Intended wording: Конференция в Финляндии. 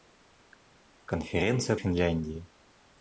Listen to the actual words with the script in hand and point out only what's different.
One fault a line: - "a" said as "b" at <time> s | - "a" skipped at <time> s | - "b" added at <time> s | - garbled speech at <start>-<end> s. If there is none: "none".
none